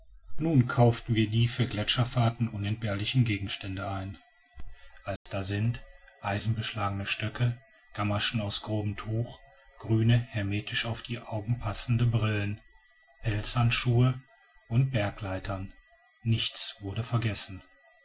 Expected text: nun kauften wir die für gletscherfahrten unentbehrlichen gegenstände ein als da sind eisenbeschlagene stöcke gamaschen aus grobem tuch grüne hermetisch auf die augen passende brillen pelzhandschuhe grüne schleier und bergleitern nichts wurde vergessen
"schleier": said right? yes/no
no